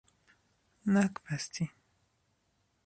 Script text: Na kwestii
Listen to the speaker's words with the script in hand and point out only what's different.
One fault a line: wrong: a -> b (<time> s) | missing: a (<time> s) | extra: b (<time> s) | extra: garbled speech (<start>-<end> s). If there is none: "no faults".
no faults